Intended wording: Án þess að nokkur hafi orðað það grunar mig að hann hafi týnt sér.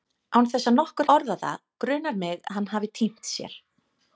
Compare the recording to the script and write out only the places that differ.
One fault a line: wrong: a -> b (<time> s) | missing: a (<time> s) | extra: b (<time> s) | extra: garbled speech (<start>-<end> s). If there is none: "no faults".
missing: hafi (1.1 s)
missing: að (2.4 s)